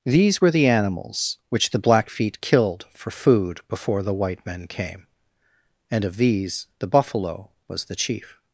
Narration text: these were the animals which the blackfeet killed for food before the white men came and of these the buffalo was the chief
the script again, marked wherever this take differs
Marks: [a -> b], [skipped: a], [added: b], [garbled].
these were the animals which the blackfeet killed for food before the white men came and of these the buffalo was the chief